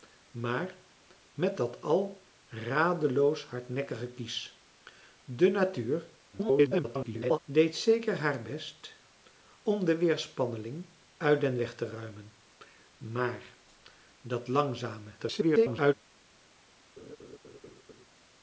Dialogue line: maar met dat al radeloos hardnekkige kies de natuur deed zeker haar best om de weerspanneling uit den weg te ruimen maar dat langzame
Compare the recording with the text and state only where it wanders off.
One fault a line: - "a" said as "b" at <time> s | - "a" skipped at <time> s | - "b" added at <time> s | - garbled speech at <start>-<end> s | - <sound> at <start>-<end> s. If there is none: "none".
- garbled speech at 6.3-7.4 s
- garbled speech at 15.2-15.9 s
- laugh at 17.0-18.1 s